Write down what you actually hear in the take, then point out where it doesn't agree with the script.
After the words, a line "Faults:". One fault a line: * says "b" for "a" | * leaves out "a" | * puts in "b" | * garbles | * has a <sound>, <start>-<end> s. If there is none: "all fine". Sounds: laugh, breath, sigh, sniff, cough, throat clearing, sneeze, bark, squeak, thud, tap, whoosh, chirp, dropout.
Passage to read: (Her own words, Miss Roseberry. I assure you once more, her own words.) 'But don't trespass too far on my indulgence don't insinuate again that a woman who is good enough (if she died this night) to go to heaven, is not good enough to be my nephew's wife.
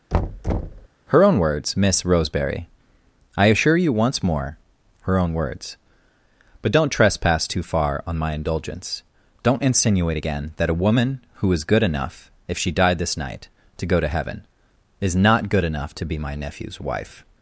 (Her own words, Miss Roseberry. I assure you once more, her own words.) 'But don't trespass too far on my indulgence don't insinuate again that a woman who is good enough (if she died this night) to go to heaven, is not good enough to be my nephew's wife.
Faults:
* has a thud, 0.1-0.9 s